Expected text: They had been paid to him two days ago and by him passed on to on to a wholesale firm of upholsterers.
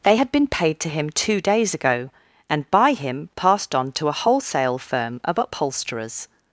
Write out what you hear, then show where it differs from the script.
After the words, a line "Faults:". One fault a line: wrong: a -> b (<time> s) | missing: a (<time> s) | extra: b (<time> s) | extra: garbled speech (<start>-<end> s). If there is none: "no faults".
They had been paid to him two days ago and by him passed on to a wholesale firm of upholsterers.
Faults:
missing: on to (4.1 s)